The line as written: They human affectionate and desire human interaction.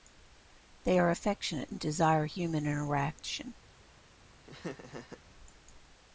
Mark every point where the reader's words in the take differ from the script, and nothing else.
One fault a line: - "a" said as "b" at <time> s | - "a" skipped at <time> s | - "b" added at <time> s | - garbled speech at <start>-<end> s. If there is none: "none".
- "human" said as "are" at 1.0 s